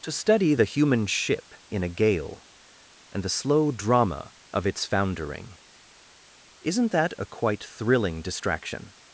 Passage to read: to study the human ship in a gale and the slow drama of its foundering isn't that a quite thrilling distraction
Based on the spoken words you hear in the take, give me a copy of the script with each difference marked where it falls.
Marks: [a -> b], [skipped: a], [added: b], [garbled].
to study the human ship in a gale and the slow drama of its foundering isn't that a quite thrilling distraction